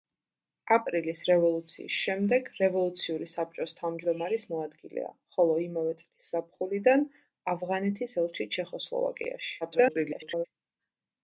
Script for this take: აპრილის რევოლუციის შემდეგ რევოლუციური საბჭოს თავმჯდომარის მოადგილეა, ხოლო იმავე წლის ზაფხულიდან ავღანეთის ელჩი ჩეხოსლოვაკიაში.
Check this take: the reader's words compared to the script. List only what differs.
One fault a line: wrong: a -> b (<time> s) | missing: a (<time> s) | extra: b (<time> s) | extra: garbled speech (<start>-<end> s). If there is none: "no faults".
extra: garbled speech (9.6-10.5 s)